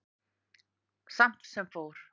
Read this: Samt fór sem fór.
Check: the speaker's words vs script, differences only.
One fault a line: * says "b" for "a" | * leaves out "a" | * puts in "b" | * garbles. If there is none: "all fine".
* leaves out "fór"